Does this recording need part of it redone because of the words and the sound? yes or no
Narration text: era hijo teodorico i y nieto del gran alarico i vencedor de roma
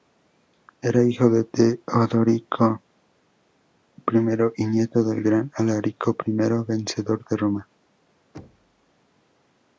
yes